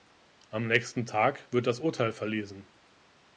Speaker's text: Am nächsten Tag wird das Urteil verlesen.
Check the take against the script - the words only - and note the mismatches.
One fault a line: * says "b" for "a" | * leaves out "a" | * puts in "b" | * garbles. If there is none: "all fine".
all fine